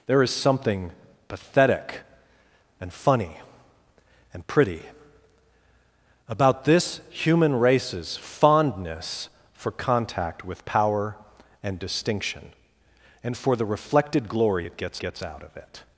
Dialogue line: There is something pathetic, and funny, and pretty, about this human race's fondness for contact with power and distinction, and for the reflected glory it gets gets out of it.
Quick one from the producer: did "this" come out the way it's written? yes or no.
yes